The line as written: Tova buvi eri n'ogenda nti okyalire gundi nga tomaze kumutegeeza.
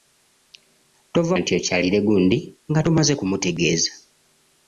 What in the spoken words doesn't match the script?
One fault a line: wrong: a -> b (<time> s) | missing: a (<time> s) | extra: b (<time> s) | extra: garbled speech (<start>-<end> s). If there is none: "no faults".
missing: buvi eri n'ogenda (1.4 s)